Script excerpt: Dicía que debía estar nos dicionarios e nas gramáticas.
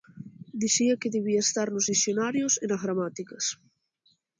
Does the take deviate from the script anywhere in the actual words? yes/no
no